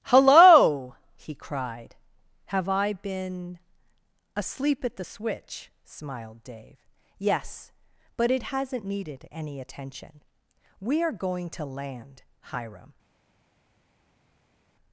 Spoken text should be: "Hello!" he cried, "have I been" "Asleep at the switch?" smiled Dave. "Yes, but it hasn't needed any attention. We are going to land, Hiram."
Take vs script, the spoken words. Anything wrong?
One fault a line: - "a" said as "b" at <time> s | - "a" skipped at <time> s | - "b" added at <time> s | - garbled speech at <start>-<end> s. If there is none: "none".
none